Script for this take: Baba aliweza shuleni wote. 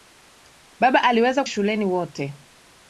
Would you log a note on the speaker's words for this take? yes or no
no